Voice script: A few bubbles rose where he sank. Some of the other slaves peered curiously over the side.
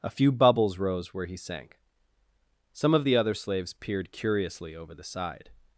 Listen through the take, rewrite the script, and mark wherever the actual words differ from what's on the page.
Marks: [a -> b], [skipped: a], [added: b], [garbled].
A few bubbles rose where he sank. Some of the other slaves peered curiously over the side.